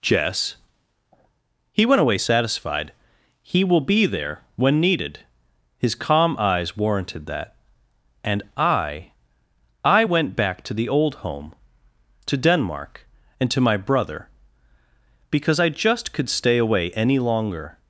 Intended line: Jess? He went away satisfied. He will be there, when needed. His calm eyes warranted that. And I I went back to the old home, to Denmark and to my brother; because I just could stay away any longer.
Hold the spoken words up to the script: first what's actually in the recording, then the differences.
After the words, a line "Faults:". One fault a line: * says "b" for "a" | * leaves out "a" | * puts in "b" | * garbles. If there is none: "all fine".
Jess? He went away satisfied. He will be there, when needed. His calm eyes warranted that. And I I went back to the old home, to Denmark and to my brother; because I just could stay away any longer.
Faults:
all fine